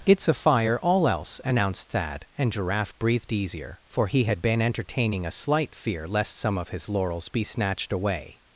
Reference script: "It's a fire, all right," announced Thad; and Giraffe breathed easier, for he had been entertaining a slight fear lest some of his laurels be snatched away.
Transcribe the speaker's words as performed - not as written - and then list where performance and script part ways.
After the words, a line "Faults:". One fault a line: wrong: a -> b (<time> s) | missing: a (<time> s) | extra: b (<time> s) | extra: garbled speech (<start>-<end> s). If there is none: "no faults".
"It's a fire, all else," announced Thad; and Giraffe breathed easier, for he had been entertaining a slight fear lest some of his laurels be snatched away.
Faults:
wrong: right -> else (1.1 s)